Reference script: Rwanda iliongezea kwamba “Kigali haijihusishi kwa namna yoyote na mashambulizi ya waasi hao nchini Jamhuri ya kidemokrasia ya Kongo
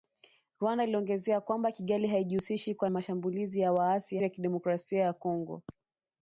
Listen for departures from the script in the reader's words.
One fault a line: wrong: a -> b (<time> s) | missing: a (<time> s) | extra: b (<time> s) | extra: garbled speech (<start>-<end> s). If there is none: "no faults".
missing: namna yoyote na (2.9 s)
missing: hao nchini Jamhuri (4.2 s)